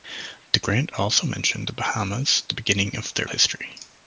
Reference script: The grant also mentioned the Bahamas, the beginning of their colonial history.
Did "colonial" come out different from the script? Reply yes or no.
yes